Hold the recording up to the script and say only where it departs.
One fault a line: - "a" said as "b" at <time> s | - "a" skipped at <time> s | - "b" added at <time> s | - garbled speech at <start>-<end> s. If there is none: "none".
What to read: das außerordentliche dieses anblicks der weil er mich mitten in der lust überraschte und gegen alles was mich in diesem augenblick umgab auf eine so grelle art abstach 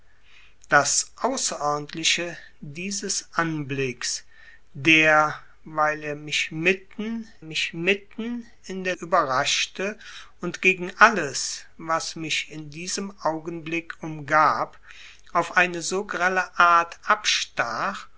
- "mich mitten" added at 7.4 s
- "lust" skipped at 8.9 s